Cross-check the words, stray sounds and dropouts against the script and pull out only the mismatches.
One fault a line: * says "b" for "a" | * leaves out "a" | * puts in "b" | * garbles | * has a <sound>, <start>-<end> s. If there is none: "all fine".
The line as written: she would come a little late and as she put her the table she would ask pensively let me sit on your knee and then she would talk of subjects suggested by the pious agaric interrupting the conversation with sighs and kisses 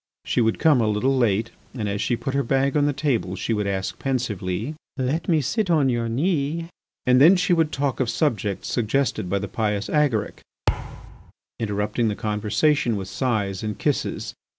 * puts in "bag on"
* has a thud, 10.7-11.3 s